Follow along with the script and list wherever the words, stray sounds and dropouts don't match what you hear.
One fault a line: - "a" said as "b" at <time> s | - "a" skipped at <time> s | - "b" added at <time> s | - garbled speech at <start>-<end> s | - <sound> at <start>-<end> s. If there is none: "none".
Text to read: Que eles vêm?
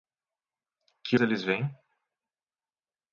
none